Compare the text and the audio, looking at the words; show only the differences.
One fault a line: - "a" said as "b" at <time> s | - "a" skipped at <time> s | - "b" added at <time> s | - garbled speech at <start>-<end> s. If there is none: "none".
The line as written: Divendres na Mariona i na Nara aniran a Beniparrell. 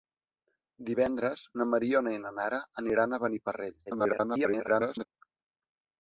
- garbled speech at 3.9-5.1 s